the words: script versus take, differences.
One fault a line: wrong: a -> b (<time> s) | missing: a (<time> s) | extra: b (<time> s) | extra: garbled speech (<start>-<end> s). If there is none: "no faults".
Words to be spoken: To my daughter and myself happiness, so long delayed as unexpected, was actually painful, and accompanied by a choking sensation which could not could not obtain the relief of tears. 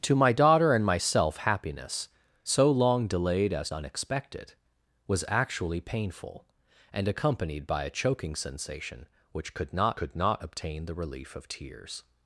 no faults